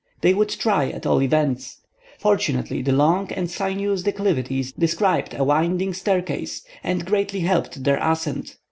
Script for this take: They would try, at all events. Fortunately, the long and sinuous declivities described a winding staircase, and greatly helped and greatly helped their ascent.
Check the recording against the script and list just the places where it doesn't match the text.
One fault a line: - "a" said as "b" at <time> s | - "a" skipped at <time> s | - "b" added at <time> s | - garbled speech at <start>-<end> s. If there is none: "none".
- "and greatly helped" skipped at 7.8 s